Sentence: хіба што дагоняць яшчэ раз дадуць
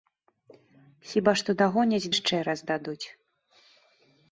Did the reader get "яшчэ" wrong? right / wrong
right